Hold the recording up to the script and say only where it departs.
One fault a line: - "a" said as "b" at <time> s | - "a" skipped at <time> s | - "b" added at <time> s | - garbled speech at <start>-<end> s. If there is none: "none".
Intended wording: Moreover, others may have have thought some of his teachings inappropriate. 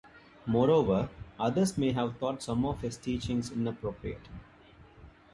- "have" skipped at 2.2 s